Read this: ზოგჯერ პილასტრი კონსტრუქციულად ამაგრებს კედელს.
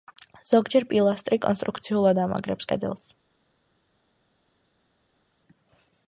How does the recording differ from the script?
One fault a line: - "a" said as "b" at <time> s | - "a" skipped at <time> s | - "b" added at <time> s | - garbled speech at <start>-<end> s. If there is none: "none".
none